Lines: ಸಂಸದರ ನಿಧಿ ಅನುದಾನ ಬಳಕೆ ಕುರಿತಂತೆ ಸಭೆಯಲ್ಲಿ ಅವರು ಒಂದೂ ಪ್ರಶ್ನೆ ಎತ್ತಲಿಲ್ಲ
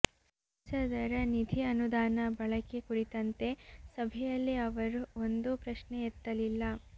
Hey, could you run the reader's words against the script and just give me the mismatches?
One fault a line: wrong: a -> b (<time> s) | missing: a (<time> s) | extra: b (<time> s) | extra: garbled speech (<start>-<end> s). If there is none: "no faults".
no faults